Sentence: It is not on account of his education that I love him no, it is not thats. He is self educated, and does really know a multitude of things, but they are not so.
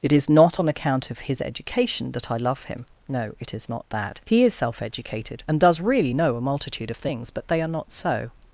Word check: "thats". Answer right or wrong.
wrong